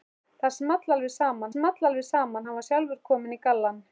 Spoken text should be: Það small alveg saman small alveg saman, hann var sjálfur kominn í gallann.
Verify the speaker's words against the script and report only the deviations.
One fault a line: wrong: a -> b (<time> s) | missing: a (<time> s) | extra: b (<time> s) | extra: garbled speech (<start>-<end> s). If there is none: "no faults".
no faults